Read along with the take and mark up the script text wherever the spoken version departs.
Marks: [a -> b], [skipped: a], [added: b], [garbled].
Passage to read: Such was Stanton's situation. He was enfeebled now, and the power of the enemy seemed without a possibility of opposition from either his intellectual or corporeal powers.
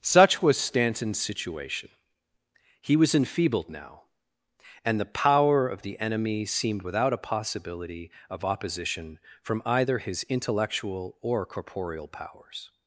Such was Stanton's situation. He was enfeebled now, and the power of the enemy seemed without a possibility of opposition from either his intellectual or corporeal powers.